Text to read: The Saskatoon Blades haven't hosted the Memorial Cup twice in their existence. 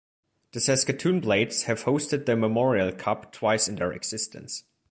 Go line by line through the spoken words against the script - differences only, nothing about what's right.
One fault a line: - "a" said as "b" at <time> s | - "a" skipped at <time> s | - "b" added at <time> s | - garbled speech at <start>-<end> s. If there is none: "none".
- "haven't" said as "have" at 1.6 s